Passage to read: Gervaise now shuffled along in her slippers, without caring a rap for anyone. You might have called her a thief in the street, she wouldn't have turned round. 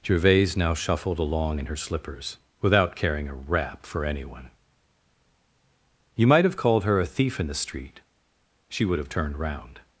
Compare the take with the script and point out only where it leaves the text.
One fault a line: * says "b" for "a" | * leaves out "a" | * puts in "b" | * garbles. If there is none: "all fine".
* says "would" for "wouldn't"